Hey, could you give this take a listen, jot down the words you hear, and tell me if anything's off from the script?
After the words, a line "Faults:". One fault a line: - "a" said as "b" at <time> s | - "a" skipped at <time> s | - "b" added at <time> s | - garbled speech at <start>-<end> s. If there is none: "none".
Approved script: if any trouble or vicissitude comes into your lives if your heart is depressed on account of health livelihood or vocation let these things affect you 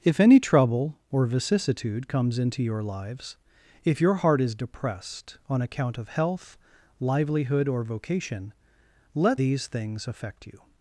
if any trouble or vicissitude comes into your lives if your heart is depressed on account of health livelihood or vocation let these things affect you
Faults:
none